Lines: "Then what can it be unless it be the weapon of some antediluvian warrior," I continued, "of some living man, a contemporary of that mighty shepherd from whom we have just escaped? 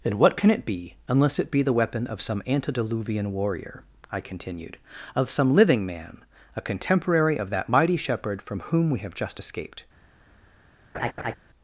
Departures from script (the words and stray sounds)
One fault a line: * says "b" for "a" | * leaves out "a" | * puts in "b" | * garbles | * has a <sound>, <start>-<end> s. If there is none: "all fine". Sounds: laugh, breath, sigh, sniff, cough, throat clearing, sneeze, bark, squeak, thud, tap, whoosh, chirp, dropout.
* has a laugh, 10.9-11.4 s